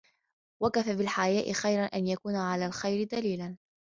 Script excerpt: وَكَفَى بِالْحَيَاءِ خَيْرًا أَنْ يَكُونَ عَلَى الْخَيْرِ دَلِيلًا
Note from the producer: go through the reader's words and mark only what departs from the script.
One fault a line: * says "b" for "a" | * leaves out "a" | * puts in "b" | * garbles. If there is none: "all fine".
all fine